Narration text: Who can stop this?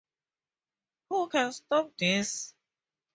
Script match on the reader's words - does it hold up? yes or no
yes